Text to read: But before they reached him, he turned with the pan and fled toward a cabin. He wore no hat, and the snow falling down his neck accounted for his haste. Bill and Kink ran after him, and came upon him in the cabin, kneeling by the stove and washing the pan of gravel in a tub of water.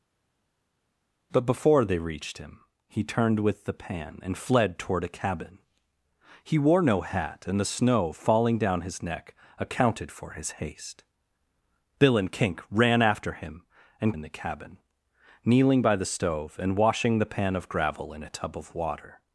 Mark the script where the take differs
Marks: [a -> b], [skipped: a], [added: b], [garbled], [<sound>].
But before they reached him, he turned with the pan and fled toward a cabin. He wore no hat, and the snow falling down his neck accounted for his haste. Bill and Kink ran after him, and [skipped: came upon him] in the cabin, kneeling by the stove and washing the pan of gravel in a tub of water.